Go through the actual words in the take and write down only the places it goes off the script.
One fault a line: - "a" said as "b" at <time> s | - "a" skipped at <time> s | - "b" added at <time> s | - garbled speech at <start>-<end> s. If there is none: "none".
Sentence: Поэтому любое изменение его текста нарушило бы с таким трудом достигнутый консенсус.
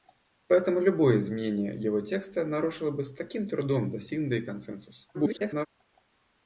- garbled speech at 5.1-5.7 s